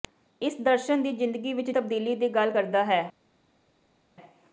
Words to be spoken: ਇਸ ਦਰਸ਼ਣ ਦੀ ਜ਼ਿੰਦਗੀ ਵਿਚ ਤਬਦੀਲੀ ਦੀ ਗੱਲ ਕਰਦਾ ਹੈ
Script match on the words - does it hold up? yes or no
yes